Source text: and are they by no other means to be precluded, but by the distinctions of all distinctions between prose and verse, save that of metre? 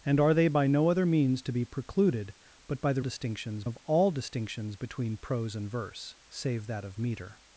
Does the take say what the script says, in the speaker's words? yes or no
yes